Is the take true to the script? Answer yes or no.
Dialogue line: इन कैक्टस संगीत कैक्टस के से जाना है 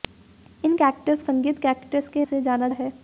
yes